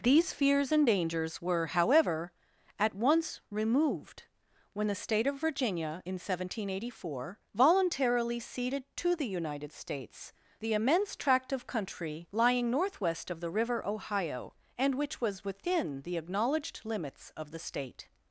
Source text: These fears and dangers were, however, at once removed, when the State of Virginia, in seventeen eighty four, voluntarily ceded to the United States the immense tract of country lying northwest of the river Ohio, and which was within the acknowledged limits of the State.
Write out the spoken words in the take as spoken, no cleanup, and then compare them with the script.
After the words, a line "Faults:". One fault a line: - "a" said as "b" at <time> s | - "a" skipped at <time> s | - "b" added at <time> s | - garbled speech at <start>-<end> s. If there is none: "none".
These fears and dangers were, however, at once removed, when the State of Virginia, in seventeen eighty four, voluntarily ceded to the United States the immense tract of country lying northwest of the river Ohio, and which was within the acknowledged limits of the State.
Faults:
none